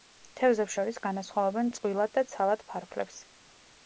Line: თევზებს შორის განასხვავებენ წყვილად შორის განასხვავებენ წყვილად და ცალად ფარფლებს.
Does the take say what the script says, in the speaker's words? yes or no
no